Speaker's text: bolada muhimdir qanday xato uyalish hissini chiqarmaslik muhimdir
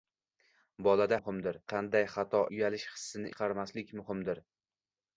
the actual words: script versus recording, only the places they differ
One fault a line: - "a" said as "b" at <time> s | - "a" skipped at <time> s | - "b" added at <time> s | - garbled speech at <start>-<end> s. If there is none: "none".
none